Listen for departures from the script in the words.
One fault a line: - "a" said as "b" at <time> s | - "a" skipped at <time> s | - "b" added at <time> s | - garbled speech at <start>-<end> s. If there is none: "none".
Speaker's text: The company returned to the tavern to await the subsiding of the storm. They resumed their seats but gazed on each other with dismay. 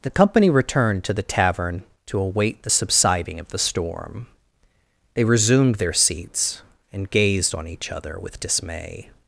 - "but" said as "and" at 6.9 s